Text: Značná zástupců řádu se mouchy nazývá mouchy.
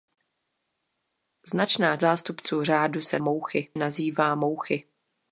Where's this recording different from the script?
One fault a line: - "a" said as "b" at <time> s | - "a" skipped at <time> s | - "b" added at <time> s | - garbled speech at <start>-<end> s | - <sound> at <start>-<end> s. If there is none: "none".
none